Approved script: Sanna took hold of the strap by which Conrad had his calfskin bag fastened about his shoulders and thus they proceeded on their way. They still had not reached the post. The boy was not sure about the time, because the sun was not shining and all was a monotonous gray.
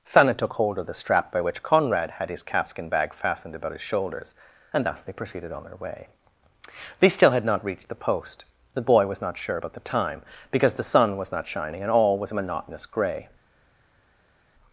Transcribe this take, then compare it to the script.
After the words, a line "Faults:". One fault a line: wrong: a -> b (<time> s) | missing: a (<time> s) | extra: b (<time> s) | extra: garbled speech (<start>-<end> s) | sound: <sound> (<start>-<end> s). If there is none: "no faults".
Sanna took hold of the strap by which Conrad had his calfskin bag fastened about his shoulders and thus they proceeded on their way. They still had not reached the post. The boy was not sure about the time, because the sun was not shining and all was a monotonous gray.
Faults:
no faults